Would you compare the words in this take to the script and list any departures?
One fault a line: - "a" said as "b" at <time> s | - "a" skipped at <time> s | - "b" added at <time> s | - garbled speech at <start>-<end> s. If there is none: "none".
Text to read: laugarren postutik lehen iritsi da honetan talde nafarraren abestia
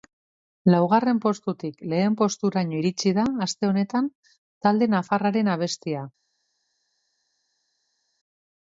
- "posturaino" added at 2.2 s
- "aste" added at 3.5 s